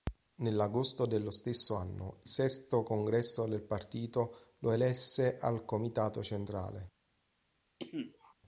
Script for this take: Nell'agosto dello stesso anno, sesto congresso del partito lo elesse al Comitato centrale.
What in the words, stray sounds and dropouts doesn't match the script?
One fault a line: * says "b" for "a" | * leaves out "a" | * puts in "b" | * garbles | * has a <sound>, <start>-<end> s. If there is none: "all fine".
* has a cough, 7.8-8.3 s